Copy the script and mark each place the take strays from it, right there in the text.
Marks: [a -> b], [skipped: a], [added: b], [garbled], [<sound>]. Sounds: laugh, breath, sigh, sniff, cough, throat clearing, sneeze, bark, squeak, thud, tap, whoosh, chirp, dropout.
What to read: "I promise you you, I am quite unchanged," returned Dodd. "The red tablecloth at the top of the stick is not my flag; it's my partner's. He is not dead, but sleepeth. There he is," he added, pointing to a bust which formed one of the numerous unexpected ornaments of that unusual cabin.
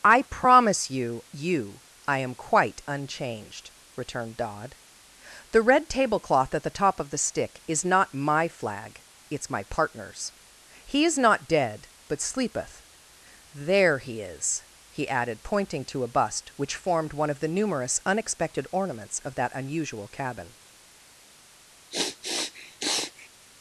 "I promise you you, I am quite unchanged," returned Dodd. "The red tablecloth at the top of the stick is not my flag; it's my partner's. He is not dead, but sleepeth. There he is," he added, pointing to a bust which formed one of the numerous unexpected ornaments of that unusual cabin. [sniff]